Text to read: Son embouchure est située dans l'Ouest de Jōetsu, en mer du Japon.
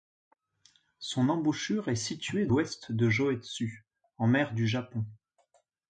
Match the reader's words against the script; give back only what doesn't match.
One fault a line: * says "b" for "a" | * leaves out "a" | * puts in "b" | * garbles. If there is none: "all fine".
* leaves out "dans"